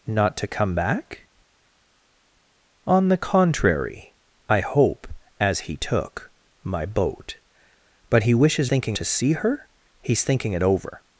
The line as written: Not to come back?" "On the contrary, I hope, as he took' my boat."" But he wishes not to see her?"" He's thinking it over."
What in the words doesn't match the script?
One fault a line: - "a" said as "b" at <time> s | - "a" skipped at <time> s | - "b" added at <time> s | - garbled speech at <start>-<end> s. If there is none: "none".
- "not" said as "thinking" at 8.7 s